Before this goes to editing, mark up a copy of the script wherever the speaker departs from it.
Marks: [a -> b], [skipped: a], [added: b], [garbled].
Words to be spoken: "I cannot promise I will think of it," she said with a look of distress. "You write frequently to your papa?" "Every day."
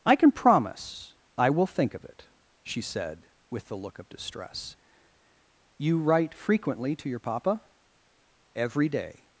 "I [cannot -> can] promise I will think of it," she said with [a -> the] look of distress. "You write frequently to your papa?" "Every day."